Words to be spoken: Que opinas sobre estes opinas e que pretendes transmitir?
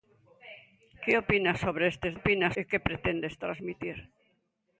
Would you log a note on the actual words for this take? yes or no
no